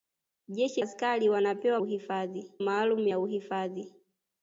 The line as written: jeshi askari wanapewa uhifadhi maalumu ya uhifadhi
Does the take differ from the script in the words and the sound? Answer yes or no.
no